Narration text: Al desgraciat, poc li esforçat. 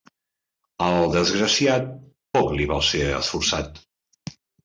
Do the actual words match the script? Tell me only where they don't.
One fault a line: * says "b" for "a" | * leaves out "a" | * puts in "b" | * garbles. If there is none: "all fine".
* puts in "val ser"